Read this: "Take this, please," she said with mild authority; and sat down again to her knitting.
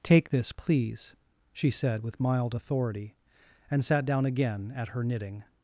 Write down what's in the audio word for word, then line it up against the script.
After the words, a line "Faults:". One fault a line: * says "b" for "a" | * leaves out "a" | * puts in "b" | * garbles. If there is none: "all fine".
"Take this, please," she said with mild authority; and sat down again at her knitting.
Faults:
* says "at" for "to"